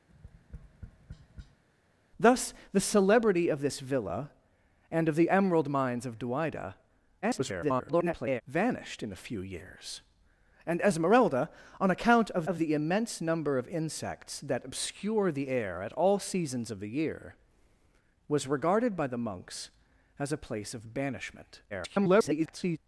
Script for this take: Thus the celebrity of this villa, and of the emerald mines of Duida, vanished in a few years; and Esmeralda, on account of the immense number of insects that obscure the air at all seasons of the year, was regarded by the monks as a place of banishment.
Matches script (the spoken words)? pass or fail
fail